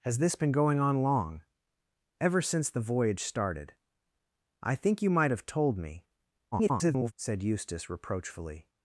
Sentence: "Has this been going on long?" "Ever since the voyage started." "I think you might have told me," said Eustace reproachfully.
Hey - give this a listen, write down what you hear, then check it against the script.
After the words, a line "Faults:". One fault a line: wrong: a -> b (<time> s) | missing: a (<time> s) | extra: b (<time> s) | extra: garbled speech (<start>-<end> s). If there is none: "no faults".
"Has this been going on long?" "Ever since the voyage started." "I think you might have told me," [garbled] said Eustace reproachfully.
Faults:
extra: garbled speech (6.5-7.1 s)